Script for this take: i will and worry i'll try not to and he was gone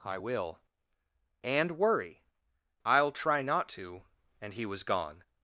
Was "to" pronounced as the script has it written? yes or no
yes